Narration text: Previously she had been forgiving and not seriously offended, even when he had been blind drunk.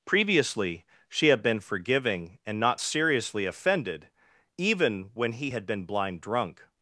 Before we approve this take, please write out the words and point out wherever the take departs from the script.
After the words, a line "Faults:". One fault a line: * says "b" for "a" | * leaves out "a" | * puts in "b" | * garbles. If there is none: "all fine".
Previously she had been forgiving and not seriously offended, even when he had been blind drunk.
Faults:
all fine